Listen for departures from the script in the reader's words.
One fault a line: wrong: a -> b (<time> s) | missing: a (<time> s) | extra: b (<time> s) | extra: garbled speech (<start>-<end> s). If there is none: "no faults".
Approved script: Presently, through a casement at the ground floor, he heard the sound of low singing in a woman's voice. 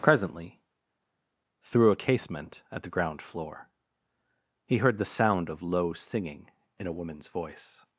no faults